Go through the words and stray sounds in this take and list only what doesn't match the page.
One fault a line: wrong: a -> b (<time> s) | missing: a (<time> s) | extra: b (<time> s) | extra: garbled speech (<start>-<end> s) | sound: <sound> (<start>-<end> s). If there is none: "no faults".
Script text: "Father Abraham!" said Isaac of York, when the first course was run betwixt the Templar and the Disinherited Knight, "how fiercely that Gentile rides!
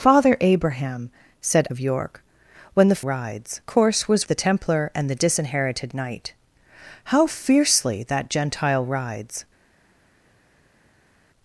missing: Isaac (1.7 s)
wrong: first -> rides (3.0 s)
missing: run betwixt (4.3 s)